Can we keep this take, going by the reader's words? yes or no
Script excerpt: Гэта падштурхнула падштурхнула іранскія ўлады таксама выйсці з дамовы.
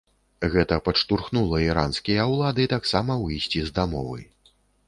no